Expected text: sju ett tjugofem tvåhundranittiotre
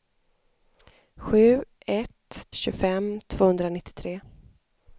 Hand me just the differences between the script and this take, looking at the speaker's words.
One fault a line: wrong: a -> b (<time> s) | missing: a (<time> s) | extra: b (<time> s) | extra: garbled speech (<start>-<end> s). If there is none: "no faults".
no faults